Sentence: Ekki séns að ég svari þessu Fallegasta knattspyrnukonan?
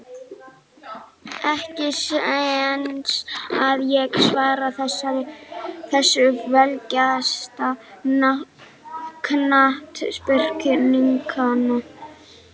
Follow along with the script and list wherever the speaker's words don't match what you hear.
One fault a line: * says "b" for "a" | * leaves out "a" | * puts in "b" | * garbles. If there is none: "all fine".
all fine